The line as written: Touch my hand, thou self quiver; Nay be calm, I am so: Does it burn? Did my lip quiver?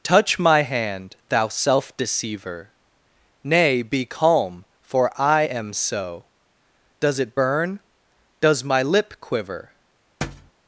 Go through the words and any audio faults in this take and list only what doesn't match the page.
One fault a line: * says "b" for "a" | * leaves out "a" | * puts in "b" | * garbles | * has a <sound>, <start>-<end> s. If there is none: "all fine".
* says "deceiver" for "quiver"
* puts in "for"
* says "Does" for "Did"
* has a thud, 10.2-10.5 s